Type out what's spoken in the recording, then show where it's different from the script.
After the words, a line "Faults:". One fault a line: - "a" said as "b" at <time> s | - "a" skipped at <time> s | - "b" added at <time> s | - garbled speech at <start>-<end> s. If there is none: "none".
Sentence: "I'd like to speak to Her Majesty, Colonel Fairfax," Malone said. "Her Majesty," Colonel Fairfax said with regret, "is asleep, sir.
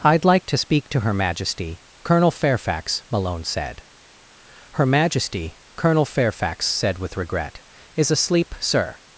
"I'd like to speak to Her Majesty, Colonel Fairfax," Malone said. "Her Majesty," Colonel Fairfax said with regret, "is asleep, sir.
Faults:
none